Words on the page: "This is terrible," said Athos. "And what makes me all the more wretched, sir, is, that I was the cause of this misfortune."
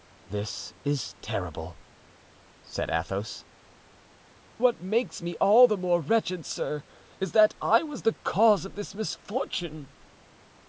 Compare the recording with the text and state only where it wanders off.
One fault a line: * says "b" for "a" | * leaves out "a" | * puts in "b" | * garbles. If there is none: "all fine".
* leaves out "And"